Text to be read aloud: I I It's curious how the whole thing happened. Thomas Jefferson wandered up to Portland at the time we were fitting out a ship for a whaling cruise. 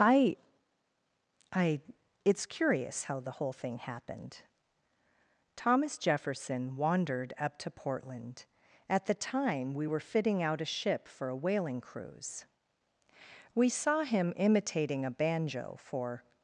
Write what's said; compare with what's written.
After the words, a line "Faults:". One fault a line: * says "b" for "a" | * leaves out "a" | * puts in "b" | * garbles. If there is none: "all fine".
I I It's curious how the whole thing happened. Thomas Jefferson wandered up to Portland at the time we were fitting out a ship for a whaling cruise. We saw him imitating a banjo for
Faults:
* puts in "We saw him imitating a banjo for"